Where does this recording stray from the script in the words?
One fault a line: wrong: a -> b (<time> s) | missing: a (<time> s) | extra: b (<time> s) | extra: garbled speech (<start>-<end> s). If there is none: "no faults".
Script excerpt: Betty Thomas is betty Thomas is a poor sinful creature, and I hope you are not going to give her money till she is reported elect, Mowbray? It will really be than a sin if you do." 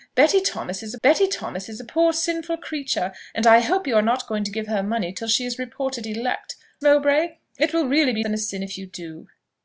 no faults